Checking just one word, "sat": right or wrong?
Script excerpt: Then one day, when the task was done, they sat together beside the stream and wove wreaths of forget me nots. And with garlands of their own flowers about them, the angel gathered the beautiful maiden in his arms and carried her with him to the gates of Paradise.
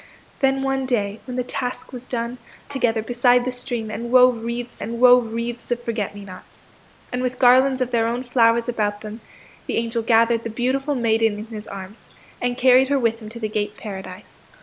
wrong